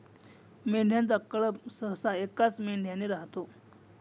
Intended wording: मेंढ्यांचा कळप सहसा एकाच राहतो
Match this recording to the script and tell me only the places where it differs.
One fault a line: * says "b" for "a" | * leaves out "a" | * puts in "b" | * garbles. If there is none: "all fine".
* puts in "मेंढ्याने"